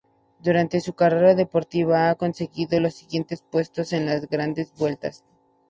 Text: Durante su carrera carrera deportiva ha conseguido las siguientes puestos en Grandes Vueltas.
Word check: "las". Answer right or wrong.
wrong